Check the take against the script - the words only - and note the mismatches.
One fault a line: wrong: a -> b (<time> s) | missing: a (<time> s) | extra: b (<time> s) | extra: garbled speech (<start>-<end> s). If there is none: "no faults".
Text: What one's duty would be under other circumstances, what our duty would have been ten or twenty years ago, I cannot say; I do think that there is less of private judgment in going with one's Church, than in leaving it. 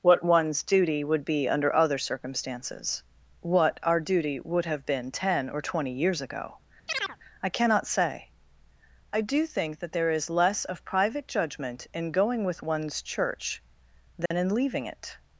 no faults